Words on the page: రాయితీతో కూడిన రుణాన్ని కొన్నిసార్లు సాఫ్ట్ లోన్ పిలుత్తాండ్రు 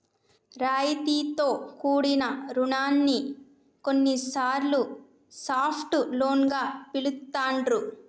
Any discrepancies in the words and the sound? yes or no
yes